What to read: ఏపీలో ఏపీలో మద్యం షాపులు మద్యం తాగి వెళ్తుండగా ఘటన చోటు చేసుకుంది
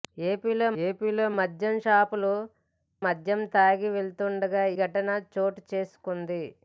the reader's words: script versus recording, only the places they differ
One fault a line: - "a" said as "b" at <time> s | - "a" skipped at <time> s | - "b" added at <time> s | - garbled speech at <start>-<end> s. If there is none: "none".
none